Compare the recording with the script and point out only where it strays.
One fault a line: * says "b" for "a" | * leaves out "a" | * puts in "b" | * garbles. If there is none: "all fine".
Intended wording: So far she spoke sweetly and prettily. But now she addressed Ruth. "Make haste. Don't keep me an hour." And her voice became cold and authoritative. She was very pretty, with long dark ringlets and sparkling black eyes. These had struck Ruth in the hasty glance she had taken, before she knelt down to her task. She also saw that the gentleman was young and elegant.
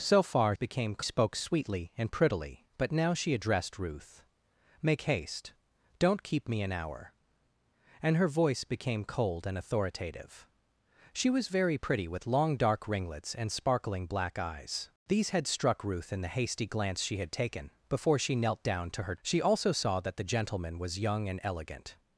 * says "became" for "she"
* leaves out "task"